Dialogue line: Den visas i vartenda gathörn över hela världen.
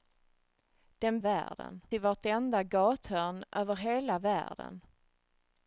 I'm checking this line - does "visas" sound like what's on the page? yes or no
no